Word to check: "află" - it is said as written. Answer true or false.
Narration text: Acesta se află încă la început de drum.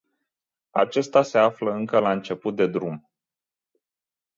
true